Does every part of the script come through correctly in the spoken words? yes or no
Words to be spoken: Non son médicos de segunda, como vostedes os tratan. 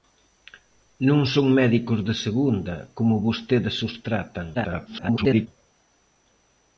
no